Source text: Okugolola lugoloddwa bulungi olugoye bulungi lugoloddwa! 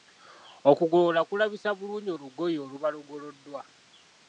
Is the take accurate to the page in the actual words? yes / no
no